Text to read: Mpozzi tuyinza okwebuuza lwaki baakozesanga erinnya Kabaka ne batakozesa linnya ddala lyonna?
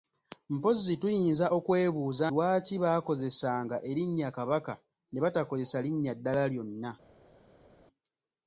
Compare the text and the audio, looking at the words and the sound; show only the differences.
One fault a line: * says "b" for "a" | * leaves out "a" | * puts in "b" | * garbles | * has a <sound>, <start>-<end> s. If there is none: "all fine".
all fine